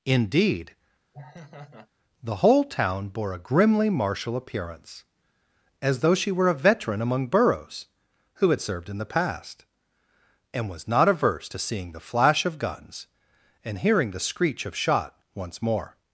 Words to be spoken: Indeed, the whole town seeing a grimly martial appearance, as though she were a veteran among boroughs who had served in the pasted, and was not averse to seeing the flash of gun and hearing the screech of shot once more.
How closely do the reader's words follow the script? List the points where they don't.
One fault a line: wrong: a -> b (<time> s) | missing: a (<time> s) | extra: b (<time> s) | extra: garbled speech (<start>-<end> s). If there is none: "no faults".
wrong: seeing -> bore (3.1 s)
wrong: pasted -> past (9.0 s)
wrong: gun -> guns (12.6 s)